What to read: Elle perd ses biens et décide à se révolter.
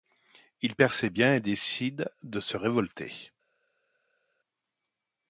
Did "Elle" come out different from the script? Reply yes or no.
yes